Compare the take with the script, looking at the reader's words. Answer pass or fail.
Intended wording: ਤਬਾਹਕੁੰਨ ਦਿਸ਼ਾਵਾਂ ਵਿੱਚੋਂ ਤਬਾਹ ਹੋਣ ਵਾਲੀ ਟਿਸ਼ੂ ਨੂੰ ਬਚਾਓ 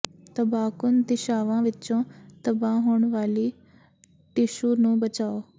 pass